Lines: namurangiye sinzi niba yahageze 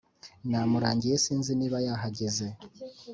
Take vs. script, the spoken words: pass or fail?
pass